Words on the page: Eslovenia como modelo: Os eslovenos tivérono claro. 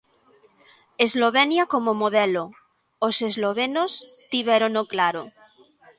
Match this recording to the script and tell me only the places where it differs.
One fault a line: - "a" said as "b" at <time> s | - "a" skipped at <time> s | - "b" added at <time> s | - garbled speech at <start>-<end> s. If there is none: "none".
none